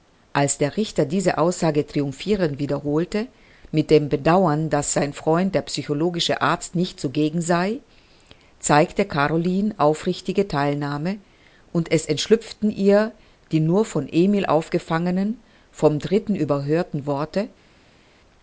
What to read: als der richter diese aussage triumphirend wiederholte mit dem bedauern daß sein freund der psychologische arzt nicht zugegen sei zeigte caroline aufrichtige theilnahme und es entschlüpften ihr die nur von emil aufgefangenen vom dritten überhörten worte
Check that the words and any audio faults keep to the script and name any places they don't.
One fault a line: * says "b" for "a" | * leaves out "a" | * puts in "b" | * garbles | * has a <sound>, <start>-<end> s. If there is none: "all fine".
all fine